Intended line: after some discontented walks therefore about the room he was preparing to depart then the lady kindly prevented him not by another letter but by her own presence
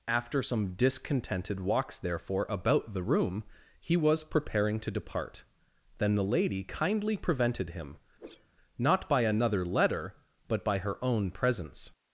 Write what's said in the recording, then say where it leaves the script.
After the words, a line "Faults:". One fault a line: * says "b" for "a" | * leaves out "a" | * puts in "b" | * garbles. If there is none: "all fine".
after some discontented walks therefore about the room he was preparing to depart then the lady kindly prevented him not by another letter but by her own presence
Faults:
all fine